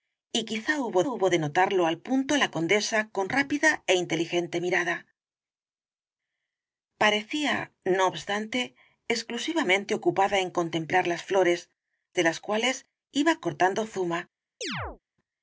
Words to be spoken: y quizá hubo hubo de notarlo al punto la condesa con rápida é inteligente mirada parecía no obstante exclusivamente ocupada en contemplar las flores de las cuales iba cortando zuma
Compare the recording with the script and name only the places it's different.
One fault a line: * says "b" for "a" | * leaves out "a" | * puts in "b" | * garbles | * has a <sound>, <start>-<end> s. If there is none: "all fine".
* has a chirp, 14.6-15.0 s